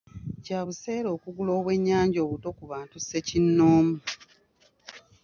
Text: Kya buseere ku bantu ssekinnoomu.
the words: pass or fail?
fail